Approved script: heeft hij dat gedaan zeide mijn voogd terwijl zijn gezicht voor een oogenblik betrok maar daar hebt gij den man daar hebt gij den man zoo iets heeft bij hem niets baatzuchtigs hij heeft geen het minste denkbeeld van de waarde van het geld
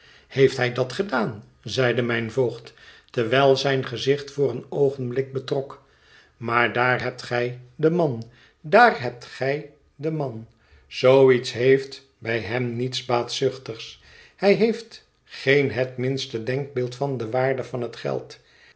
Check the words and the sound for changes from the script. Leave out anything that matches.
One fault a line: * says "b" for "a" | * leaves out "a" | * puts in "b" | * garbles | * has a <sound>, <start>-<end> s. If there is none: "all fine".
all fine